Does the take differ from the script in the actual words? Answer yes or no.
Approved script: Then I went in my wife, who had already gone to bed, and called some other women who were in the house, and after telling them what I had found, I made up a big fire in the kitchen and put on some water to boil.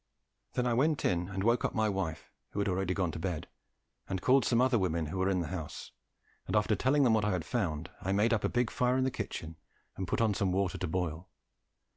yes